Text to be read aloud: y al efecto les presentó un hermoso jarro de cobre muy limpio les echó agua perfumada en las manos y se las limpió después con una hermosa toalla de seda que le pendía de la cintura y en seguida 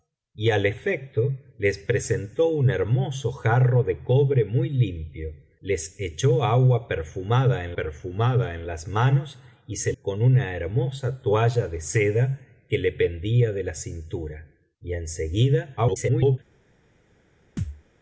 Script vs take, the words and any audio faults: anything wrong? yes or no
yes